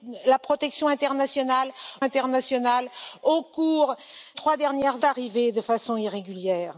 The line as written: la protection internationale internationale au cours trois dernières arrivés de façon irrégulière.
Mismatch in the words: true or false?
false